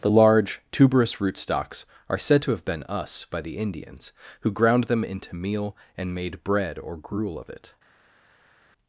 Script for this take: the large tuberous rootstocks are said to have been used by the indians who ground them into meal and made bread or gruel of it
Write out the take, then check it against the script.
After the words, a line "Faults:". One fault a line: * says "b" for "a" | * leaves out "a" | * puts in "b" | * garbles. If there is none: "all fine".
the large tuberous rootstocks are said to have been us by the indians who ground them into meal and made bread or gruel of it
Faults:
* says "us" for "used"